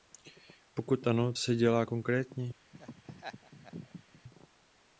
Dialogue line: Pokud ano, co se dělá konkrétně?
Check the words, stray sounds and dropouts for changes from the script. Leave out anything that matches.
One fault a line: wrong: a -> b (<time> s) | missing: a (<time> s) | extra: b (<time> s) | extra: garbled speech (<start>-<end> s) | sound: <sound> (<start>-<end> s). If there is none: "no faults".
missing: co (1.3 s)
sound: laugh (2.7-4.2 s)